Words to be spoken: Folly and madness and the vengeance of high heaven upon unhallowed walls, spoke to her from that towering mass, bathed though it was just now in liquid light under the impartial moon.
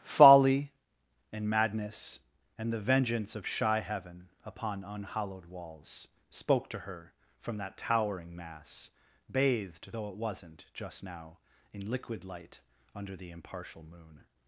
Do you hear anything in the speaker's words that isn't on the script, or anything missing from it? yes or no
yes